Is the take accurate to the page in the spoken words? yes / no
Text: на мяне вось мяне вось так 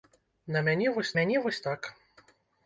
yes